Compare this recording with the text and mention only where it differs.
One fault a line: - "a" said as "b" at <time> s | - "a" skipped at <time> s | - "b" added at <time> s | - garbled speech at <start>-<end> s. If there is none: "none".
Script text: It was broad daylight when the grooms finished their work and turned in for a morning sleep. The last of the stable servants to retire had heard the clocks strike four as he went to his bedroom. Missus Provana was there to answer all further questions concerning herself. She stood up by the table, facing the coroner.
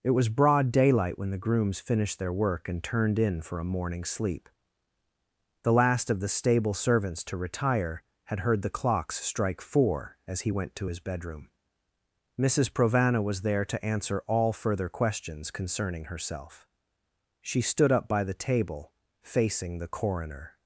none